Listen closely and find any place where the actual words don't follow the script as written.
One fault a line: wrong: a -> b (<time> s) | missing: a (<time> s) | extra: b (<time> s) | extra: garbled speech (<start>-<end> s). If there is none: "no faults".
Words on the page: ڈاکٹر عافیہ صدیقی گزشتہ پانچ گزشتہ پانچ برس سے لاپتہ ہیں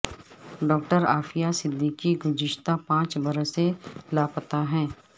missing: گزشتہ پانچ (3.1 s)